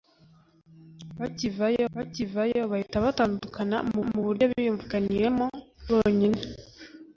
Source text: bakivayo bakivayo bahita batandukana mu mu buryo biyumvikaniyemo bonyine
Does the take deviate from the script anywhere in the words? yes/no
no